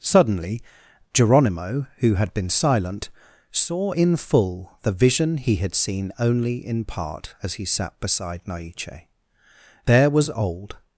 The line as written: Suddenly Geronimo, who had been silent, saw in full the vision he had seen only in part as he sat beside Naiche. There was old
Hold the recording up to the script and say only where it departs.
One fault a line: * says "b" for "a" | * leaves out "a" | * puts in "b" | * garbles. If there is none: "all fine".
all fine